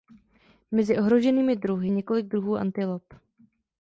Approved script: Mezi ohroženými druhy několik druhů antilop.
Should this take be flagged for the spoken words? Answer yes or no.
no